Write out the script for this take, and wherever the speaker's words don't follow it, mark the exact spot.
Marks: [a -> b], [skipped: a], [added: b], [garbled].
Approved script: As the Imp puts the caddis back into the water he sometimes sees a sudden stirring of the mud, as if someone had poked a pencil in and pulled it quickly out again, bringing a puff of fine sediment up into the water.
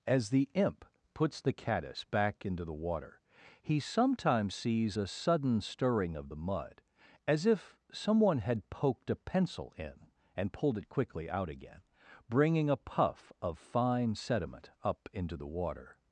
As the Imp puts the caddis back into the water he sometimes sees a sudden stirring of the mud, as if someone had poked a pencil in and pulled it quickly out again, bringing a puff of fine sediment up into the water.